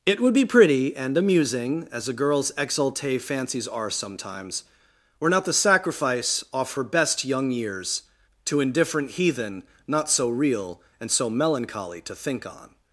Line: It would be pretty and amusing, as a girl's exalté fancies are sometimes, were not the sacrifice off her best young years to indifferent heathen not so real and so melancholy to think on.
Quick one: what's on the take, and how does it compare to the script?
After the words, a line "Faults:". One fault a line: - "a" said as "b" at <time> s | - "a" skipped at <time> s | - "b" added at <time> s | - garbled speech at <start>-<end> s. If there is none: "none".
It would be pretty and amusing, as a girl's exalté fancies are sometimes, were not the sacrifice off her best young years to indifferent heathen not so real and so melancholy to think on.
Faults:
none